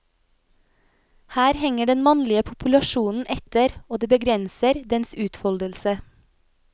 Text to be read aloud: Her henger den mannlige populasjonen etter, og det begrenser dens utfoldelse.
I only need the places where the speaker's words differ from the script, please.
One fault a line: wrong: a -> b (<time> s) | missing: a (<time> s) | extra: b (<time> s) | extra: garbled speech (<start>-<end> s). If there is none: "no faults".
no faults